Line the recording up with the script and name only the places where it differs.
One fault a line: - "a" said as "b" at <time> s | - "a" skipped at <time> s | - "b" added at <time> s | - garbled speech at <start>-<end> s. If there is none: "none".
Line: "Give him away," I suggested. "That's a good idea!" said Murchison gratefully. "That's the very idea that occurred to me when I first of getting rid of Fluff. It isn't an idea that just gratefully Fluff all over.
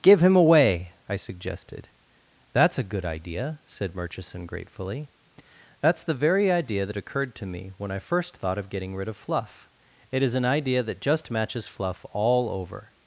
- "thought" added at 8.4 s
- "isn't" said as "is" at 10.2 s
- "gratefully" said as "matches" at 11.3 s